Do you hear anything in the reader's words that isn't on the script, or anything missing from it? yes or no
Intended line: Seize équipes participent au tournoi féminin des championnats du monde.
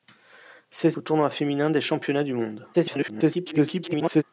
yes